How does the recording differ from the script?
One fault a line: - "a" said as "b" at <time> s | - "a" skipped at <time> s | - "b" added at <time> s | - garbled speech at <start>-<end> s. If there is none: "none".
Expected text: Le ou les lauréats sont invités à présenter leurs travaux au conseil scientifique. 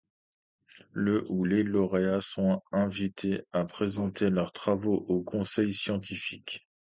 none